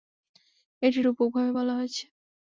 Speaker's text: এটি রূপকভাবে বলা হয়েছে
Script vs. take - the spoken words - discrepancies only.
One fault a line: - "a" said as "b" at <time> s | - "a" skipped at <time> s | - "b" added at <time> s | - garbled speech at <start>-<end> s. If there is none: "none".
none